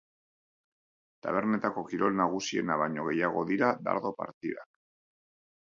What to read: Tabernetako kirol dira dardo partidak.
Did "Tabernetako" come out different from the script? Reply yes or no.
no